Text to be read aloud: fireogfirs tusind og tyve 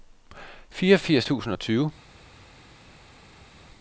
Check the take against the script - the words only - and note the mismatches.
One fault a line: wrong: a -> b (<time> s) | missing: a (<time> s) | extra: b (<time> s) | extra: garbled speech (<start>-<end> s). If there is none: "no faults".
no faults